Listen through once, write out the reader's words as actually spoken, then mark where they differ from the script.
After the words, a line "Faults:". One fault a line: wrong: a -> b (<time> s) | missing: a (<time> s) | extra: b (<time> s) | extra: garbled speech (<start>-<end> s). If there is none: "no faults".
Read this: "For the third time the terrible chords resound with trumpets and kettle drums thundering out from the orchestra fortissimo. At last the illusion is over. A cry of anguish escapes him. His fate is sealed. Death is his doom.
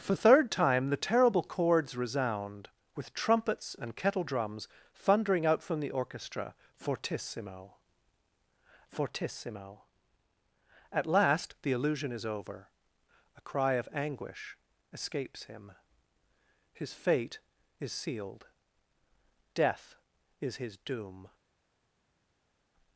"For third time the terrible chords resound with trumpets and kettle drums thundering out from the orchestra fortissimo fortissimo. At last the illusion is over. A cry of anguish escapes him. His fate is sealed. Death is his doom.
Faults:
missing: the (0.1 s)
extra: fortissimo (8.9 s)